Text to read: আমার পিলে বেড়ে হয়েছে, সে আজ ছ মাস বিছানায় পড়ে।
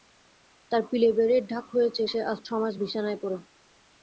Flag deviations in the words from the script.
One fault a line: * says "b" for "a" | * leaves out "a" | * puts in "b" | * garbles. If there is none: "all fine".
* says "তার" for "আমার"
* puts in "ঢাক"